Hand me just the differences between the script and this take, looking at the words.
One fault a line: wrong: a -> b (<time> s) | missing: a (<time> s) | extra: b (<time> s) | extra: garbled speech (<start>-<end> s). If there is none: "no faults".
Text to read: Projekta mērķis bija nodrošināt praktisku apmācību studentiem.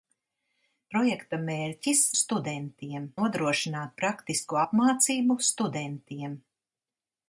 wrong: bija -> studentiem (2.2 s)